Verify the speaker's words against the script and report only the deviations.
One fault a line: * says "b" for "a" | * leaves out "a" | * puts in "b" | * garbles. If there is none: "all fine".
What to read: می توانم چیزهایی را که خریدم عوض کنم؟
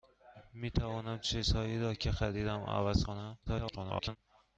* garbles